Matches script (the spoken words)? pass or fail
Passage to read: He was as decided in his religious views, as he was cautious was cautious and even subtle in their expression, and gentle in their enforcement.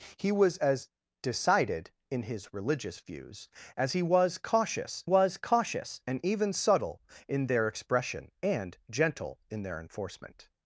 pass